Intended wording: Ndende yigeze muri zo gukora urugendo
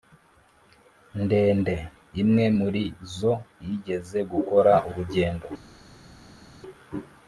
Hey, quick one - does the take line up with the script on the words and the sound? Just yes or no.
no